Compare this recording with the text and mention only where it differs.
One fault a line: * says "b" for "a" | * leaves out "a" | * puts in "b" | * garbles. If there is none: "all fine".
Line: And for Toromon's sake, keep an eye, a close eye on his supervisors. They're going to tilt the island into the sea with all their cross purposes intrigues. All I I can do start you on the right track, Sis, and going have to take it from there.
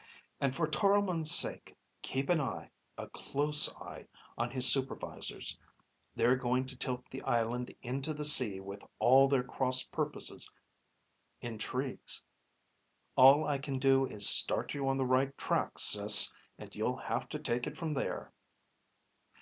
* leaves out "I"
* puts in "is"
* says "you'll" for "going"